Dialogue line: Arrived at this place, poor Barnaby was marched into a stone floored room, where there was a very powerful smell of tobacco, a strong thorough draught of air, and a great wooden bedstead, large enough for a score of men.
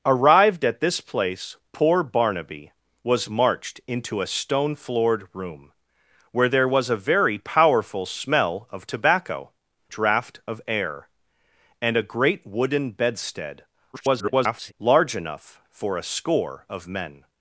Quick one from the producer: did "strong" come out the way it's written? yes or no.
no